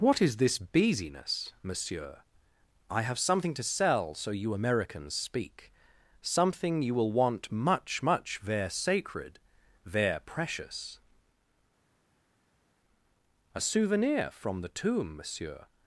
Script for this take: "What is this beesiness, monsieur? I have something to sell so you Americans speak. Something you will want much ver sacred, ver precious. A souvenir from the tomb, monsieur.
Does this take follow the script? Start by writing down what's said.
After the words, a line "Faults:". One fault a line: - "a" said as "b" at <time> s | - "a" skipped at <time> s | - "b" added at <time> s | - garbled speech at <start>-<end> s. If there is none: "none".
"What is this beesiness, monsieur? I have something to sell so you Americans speak. Something you will want much much ver sacred, ver precious. A souvenir from the tomb, monsieur.
Faults:
- "much" added at 8.0 s